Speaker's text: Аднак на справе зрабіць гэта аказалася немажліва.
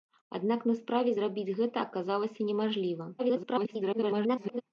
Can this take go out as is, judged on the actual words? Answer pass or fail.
fail